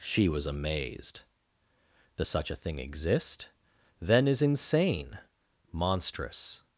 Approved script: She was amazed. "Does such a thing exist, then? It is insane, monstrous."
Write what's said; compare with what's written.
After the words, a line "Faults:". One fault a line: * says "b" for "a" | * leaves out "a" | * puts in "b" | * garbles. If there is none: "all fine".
She was amazed. "Does such a thing exist, then? is insane, monstrous."
Faults:
* leaves out "It"